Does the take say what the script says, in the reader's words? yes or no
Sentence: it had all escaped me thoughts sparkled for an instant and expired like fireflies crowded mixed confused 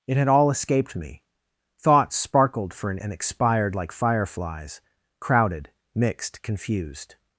no